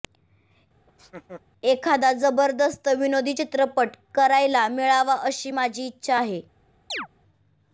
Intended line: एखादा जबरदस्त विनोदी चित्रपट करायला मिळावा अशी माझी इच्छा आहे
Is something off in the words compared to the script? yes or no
no